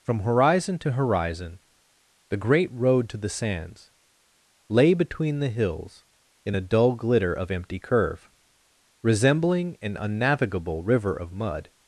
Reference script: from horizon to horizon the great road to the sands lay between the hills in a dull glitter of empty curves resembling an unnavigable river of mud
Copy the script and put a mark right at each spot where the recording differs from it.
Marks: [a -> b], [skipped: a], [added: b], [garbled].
from horizon to horizon the great road to the sands lay between the hills in a dull glitter of empty [curves -> curve] resembling an unnavigable river of mud